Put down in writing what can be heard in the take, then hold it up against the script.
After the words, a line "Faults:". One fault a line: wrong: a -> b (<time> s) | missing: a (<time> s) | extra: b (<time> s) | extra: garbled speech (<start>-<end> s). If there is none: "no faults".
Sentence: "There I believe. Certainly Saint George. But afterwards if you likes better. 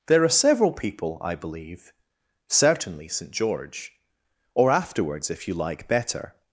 "There are several people, I believe. Certainly Saint George. Or afterwards if you like better.
Faults:
extra: are several people (0.2 s)
wrong: But -> Or (4.5 s)
wrong: likes -> like (5.5 s)